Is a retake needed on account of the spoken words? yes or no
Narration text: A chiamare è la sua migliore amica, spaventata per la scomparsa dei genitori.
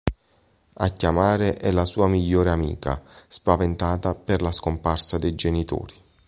no